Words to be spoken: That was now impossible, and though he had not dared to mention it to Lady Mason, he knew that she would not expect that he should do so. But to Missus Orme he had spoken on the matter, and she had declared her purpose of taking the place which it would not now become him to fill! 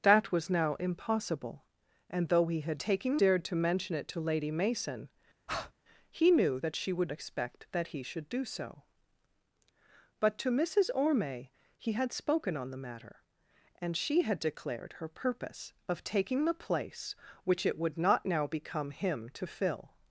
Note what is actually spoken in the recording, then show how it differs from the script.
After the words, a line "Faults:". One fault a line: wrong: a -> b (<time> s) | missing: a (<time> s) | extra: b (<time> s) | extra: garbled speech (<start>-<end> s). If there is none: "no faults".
That was now impossible, and though he had taking dared to mention it to Lady Mason, he knew that she would expect that he should do so. But to Missus Orme he had spoken on the matter, and she had declared her purpose of taking the place which it would not now become him to fill!
Faults:
wrong: not -> taking (2.8 s)
missing: not (7.1 s)